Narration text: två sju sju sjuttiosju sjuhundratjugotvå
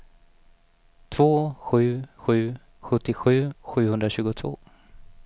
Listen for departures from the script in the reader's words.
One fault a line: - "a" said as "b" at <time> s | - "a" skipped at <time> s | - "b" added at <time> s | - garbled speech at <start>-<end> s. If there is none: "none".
none